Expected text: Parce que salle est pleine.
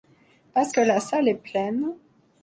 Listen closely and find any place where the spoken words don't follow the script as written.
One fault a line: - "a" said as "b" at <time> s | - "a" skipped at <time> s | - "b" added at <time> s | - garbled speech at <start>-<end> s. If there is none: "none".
- "la" added at 0.8 s